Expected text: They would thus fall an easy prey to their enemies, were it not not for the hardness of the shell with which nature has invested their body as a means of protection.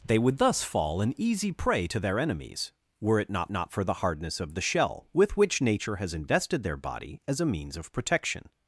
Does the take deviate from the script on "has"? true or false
false